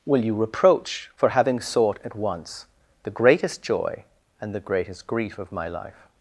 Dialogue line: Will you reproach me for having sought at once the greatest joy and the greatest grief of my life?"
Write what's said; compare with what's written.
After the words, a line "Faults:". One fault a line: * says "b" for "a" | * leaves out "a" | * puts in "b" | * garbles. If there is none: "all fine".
Will you reproach for having sought at once the greatest joy and the greatest grief of my life?"
Faults:
* leaves out "me"